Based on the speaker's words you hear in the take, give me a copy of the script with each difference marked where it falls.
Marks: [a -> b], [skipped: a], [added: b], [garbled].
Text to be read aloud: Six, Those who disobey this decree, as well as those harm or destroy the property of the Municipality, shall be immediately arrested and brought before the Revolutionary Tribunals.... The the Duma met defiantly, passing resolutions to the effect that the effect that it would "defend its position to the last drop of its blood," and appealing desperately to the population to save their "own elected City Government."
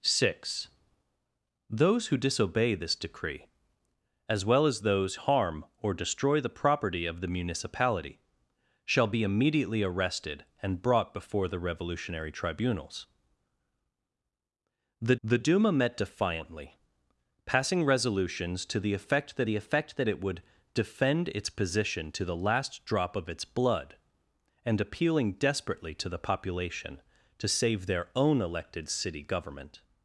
Six, Those who disobey this decree, as well as those harm or destroy the property of the Municipality, shall be immediately arrested and brought before the Revolutionary Tribunals.... The the Duma met defiantly, passing resolutions to the effect that the effect that it would "defend its position to the last drop of its blood," and appealing desperately to the population to save their "own elected City Government."